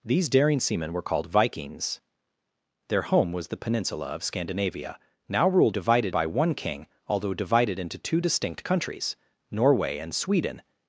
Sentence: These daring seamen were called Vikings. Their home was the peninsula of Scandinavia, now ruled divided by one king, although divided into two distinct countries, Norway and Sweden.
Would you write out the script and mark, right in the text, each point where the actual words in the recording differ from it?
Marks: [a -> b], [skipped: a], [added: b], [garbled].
These daring seamen were called Vikings. Their home was the peninsula of Scandinavia, now ruled divided by one king, although divided into two distinct countries, Norway and Sweden.